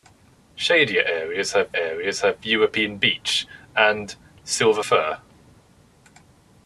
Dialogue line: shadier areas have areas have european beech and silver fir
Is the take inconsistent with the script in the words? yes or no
no